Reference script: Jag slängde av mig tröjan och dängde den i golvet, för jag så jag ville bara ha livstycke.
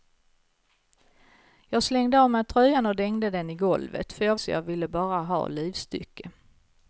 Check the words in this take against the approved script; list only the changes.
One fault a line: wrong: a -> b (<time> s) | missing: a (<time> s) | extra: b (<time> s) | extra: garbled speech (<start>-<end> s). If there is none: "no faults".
no faults